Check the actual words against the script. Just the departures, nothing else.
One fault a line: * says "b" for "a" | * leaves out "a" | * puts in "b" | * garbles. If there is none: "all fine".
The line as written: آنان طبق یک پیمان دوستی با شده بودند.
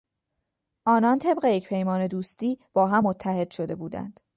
* puts in "هم متحد"